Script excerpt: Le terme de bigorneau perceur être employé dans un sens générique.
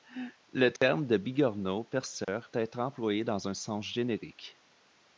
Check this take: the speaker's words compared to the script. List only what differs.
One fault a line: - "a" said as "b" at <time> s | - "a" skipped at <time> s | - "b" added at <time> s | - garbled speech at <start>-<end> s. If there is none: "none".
none